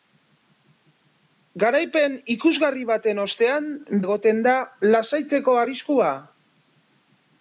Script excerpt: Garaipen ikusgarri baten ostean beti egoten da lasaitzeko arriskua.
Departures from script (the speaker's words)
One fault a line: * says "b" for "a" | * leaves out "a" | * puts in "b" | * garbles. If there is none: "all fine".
* leaves out "beti"